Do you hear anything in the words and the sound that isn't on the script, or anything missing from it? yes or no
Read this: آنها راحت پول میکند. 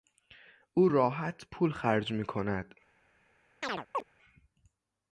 yes